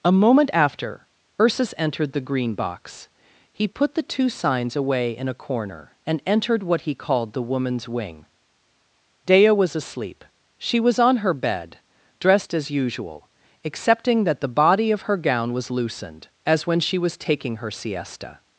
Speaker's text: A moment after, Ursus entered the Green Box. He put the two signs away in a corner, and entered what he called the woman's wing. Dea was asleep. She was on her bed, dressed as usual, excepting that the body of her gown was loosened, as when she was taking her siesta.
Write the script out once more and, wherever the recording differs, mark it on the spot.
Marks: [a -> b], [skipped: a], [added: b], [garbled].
A moment after, Ursus entered the Green Box. He put the two signs away in a corner, and entered what he called the woman's wing. Dea was asleep. She was on her bed, dressed as usual, excepting that the body of her gown was loosened, as when she was taking her siesta.